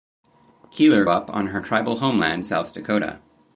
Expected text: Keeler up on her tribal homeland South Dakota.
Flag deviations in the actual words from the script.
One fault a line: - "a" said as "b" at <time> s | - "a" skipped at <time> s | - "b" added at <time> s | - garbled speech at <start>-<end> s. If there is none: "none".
none